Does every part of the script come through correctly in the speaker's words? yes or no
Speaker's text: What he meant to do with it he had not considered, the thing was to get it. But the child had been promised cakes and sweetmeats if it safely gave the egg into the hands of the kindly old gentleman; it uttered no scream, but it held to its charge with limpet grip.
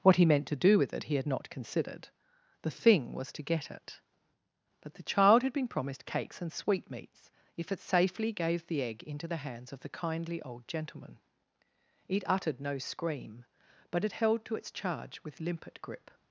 yes